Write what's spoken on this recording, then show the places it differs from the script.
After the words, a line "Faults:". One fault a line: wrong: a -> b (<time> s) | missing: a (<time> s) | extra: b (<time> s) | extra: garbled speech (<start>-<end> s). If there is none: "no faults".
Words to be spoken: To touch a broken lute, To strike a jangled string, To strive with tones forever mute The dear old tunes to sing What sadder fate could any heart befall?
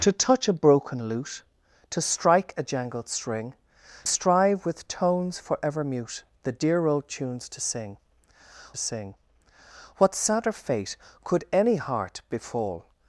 To touch a broken lute, To strike a jangled string, Strive with tones forever mute The dear old tunes to sing sing What sadder fate could any heart befall?
Faults:
missing: To (3.5 s)
extra: sing (8.8 s)